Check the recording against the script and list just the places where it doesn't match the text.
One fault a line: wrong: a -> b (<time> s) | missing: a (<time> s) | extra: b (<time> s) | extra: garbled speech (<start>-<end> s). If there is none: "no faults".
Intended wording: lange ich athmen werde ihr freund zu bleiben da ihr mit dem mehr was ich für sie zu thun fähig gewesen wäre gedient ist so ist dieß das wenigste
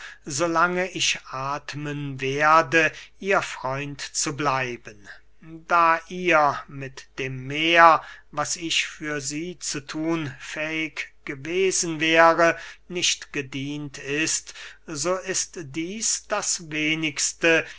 extra: nicht (12.9 s)